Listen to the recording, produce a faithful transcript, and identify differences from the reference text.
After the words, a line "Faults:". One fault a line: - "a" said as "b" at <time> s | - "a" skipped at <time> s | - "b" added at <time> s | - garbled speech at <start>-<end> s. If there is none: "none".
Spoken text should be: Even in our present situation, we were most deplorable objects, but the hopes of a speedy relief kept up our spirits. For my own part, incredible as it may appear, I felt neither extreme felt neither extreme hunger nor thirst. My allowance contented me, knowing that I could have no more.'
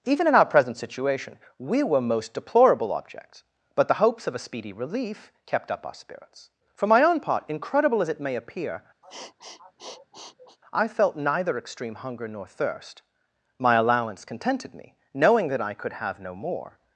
Even in our present situation, we were most deplorable objects, but the hopes of a speedy relief kept up our spirits. For my own part, incredible as it may appear, I felt neither extreme hunger nor thirst. My allowance contented me, knowing that I could have no more.'
Faults:
- "felt neither extreme" skipped at 12.0 s